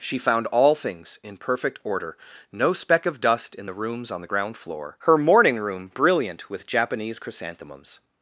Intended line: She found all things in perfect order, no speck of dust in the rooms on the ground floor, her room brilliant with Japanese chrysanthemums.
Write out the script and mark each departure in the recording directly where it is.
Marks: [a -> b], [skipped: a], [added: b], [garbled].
She found all things in perfect order, no speck of dust in the rooms on the ground floor, her [added: morning] room brilliant with Japanese chrysanthemums.